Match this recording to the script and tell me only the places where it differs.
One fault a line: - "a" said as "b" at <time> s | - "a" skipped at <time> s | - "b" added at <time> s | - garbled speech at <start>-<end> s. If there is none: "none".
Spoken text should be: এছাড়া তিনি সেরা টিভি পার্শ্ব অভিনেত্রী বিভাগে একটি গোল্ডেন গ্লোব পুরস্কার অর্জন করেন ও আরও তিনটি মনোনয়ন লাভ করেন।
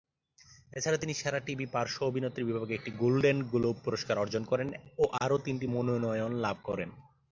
none